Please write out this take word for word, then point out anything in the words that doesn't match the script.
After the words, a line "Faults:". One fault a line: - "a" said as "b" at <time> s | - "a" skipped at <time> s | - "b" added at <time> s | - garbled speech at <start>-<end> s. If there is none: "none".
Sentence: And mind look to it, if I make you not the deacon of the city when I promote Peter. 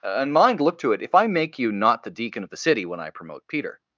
And mind look to it, if I make you not the deacon of the city when I promote Peter.
Faults:
none